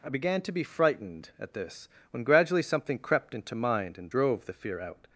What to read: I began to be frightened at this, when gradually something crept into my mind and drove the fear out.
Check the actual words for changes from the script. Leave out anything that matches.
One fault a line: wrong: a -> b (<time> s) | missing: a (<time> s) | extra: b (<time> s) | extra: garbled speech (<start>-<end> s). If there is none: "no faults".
missing: my (3.6 s)